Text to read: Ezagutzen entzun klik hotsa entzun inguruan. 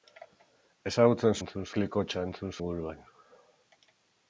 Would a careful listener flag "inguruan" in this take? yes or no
no